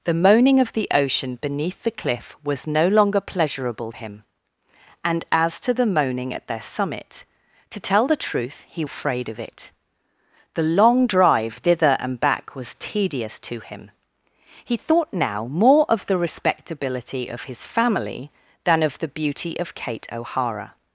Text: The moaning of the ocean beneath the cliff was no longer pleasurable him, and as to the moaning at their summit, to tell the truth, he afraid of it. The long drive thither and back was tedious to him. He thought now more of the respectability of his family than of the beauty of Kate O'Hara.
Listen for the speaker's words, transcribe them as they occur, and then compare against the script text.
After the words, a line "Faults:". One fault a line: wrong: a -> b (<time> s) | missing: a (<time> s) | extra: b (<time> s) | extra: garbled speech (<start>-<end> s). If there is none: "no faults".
The moaning of the ocean beneath the cliff was no longer pleasurable him, and as to the moaning at their summit, to tell the truth, he afraid of it. The long drive thither and back was tedious to him. He thought now more of the respectability of his family than of the beauty of Kate O'Hara.
Faults:
no faults